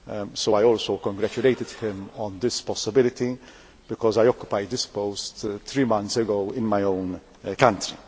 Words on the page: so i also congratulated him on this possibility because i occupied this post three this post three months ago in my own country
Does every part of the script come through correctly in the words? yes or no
no